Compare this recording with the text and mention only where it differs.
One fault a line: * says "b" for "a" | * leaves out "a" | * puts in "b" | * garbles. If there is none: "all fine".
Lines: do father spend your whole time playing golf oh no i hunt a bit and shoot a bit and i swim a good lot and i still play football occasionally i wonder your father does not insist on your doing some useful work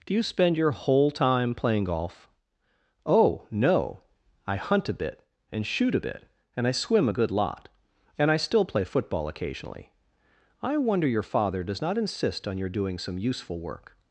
* says "you" for "father"